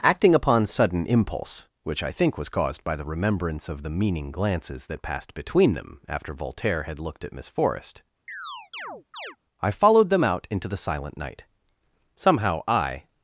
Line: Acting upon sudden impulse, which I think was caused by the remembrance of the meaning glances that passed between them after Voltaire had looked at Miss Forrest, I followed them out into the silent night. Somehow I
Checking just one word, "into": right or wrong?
right